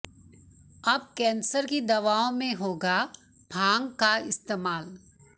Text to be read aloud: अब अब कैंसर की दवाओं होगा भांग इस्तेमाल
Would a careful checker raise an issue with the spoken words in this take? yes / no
yes